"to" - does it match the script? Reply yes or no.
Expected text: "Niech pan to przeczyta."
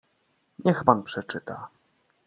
no